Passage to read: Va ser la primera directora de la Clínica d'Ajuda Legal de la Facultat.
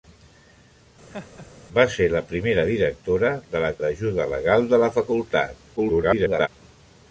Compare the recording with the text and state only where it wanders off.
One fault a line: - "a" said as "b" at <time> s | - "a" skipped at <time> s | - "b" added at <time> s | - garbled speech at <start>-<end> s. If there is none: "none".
- "Clínica" skipped at 3.7 s
- garbled speech at 5.8-6.5 s